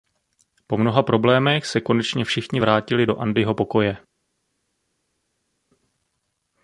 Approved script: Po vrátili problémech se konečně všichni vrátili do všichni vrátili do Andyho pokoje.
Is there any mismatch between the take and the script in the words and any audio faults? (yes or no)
yes